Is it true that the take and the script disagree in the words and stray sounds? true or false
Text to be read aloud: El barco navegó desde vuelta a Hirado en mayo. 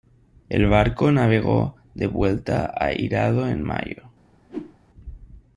true